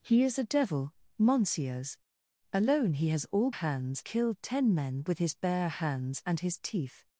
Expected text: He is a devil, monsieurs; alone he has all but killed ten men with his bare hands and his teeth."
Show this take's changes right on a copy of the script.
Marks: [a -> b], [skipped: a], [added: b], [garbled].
He is a devil, monsieurs; alone he has all [but -> hands] killed ten men with his bare hands and his teeth."